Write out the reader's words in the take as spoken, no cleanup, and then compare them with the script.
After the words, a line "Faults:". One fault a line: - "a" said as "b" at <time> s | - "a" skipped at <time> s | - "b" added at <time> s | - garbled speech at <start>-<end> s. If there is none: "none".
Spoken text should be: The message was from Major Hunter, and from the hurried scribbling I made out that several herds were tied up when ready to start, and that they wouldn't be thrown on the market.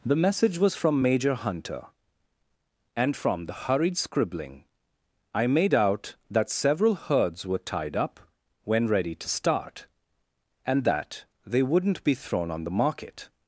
The message was from Major Hunter, and from the hurried scribbling I made out that several herds were tied up when ready to start, and that they wouldn't be thrown on the market.
Faults:
none